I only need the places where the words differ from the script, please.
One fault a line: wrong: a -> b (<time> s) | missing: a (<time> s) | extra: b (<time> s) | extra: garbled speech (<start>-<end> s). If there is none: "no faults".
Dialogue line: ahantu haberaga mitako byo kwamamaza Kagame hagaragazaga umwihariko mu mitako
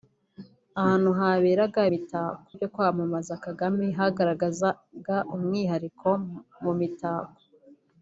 no faults